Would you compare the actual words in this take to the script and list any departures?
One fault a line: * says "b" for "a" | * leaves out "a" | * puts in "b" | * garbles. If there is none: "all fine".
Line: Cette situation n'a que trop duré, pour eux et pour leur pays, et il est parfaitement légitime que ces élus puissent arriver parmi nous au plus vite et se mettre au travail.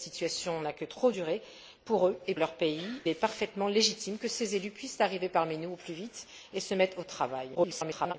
* leaves out "pour"
* leaves out "et il"
* garbles